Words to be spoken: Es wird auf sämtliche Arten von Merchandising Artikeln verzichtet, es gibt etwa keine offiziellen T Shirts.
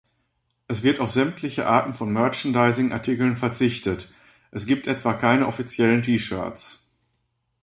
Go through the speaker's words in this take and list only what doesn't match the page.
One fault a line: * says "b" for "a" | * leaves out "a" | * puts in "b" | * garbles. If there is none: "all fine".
all fine